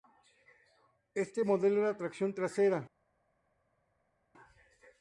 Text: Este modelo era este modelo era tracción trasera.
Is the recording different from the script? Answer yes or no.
yes